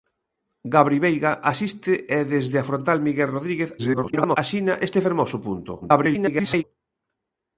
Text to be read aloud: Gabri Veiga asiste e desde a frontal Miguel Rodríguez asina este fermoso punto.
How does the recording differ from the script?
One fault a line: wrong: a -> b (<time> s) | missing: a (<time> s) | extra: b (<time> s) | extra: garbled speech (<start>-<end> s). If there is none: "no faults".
extra: garbled speech (3.8-4.4 s)
extra: garbled speech (5.8-6.6 s)